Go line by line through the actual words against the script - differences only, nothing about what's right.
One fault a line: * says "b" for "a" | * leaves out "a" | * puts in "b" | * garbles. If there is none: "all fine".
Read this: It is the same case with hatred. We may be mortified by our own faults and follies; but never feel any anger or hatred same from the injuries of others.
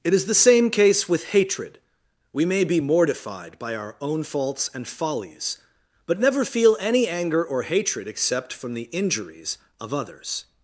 * says "except" for "same"